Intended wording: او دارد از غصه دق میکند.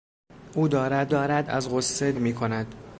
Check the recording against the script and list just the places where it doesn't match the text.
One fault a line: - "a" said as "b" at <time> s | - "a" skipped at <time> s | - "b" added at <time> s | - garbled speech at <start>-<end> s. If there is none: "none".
- "دارد" added at 1.1 s
- "دق" skipped at 2.1 s